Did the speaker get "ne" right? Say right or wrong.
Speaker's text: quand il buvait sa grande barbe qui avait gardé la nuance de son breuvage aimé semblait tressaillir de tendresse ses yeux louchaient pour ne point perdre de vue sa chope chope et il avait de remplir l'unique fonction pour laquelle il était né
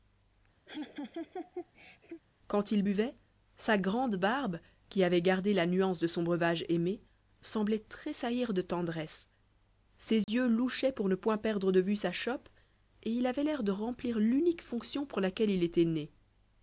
right